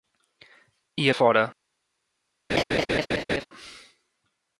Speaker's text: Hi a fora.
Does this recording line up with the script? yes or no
yes